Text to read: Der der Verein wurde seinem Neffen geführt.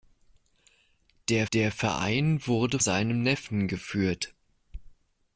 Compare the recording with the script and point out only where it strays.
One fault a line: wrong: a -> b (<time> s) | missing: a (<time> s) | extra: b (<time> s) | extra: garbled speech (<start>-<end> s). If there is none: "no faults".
no faults